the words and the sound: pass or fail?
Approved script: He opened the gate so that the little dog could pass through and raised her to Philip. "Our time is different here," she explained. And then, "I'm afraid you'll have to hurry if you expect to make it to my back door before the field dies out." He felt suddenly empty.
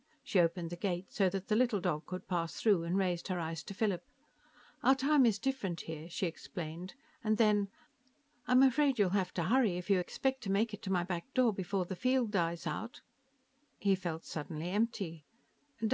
fail